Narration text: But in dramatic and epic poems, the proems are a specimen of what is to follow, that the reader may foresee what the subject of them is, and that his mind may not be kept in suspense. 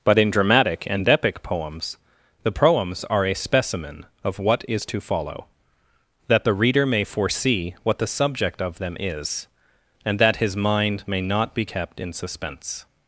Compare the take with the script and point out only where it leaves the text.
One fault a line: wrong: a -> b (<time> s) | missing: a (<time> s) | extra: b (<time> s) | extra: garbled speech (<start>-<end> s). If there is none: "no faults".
no faults